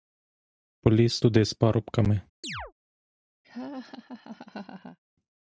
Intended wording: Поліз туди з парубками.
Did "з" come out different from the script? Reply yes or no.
no